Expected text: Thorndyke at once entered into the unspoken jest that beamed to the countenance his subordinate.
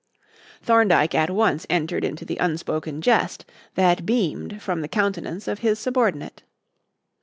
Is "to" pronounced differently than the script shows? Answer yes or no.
yes